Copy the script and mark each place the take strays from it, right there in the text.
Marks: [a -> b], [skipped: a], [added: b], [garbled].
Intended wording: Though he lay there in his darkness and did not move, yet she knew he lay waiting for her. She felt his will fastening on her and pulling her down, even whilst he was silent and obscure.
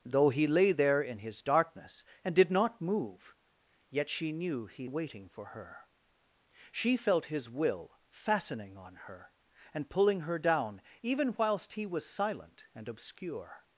Though he lay there in his darkness and did not move, yet she knew he [skipped: lay] waiting for her. She felt his will fastening on her and pulling her down, even whilst he was silent and obscure.